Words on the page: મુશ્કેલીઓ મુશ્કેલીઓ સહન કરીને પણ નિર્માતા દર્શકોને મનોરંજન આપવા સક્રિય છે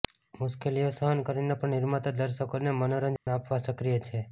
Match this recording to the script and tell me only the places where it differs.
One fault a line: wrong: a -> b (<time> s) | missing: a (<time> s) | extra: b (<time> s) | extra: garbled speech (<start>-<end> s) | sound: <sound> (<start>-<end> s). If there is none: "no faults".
missing: મુશ્કેલીઓ (0.9 s)
sound: dropout (3.2-3.3 s)